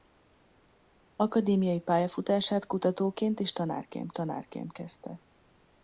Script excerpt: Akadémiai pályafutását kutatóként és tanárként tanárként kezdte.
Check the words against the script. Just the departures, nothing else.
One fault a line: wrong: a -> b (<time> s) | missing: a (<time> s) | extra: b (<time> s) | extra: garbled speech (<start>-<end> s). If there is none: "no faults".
no faults